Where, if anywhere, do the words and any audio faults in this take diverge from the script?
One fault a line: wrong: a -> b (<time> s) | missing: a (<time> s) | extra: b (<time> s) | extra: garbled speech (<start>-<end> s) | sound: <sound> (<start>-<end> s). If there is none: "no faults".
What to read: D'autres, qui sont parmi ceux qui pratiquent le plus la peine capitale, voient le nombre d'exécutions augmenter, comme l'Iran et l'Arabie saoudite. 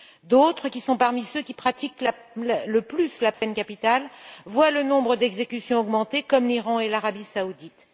sound: dropout (3.3-3.4 s)